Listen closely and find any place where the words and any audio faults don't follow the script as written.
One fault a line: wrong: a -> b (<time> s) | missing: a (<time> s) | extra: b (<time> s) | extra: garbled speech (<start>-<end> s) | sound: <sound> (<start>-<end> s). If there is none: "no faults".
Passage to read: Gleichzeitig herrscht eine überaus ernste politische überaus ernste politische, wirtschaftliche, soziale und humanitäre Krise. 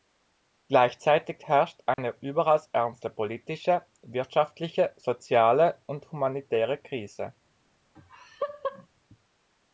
sound: dropout (1.9-2.0 s)
missing: überaus ernste politische (3.8 s)
sound: laugh (8.0-8.9 s)